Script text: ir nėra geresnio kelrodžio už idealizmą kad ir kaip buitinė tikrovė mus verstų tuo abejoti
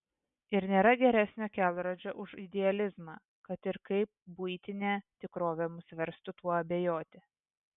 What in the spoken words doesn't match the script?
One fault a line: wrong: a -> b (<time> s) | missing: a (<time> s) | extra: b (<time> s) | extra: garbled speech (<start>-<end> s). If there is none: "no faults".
no faults